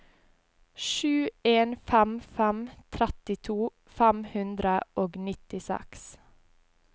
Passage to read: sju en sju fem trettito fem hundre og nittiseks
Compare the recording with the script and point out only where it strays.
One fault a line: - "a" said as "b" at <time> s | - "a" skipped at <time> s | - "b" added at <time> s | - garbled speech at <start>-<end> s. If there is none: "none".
- "sju" said as "fem" at 1.9 s